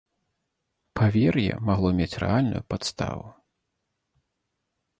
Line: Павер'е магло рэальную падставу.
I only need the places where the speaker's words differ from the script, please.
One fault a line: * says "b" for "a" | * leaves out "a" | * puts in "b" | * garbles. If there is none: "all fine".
* puts in "мець"